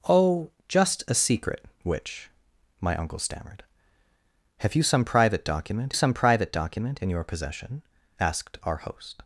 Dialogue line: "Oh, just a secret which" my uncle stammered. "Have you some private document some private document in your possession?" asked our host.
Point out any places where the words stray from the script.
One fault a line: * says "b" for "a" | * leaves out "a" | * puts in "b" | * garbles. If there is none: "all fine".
all fine